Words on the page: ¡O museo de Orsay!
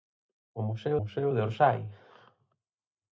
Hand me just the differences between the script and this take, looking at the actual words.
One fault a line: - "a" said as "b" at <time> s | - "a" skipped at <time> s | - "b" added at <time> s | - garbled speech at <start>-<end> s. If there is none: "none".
- "museo" added at 1.0 s